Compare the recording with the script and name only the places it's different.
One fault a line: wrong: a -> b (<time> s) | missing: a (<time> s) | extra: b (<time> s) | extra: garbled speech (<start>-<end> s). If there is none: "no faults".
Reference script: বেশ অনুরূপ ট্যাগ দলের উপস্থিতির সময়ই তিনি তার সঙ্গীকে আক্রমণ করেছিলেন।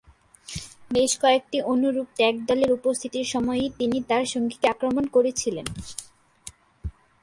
extra: কয়েকটি (1.2 s)